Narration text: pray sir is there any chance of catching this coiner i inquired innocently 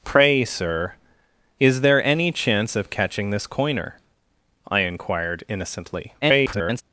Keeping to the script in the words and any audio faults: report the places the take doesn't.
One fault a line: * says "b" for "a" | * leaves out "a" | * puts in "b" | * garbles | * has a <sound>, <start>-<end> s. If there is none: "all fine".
* garbles